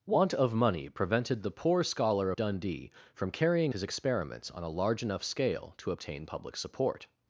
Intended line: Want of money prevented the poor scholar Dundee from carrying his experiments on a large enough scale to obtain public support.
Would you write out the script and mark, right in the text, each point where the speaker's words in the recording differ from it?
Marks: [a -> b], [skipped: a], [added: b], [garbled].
Want of money prevented the poor scholar Dundee from carrying his experiments on a large enough scale to obtain public support.